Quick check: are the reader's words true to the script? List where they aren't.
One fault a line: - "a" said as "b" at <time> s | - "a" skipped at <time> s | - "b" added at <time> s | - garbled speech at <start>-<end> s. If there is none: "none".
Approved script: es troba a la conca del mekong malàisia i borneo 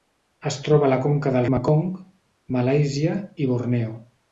none